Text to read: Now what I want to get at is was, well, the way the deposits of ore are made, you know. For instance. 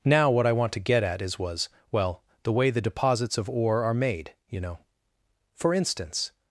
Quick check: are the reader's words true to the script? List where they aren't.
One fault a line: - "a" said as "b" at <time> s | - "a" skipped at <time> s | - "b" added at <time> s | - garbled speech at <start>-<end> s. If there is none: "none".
none